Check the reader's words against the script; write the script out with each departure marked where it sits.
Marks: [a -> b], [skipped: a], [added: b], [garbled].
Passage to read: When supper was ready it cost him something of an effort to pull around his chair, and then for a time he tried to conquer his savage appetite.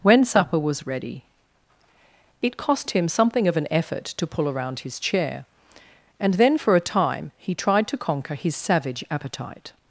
When supper was ready it cost him something of an effort to pull around his chair, and then for a time he tried to conquer his savage appetite.